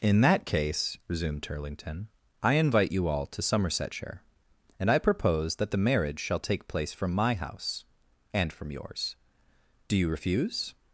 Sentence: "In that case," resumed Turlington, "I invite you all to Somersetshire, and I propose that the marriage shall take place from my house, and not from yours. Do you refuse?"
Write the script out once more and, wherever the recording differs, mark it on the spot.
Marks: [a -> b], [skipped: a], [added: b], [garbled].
"In that case," resumed Turlington, "I invite you all to Somersetshire, and I propose that the marriage shall take place from my house, and [skipped: not] from yours. Do you refuse?"